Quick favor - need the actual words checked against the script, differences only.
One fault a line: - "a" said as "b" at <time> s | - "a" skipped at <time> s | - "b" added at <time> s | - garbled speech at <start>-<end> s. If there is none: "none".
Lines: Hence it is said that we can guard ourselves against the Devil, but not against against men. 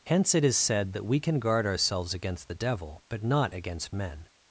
- "against" skipped at 3.9 s